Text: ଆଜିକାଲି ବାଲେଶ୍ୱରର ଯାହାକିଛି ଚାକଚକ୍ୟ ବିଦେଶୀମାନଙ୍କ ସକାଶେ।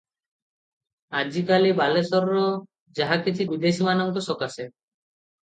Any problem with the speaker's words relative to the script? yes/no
yes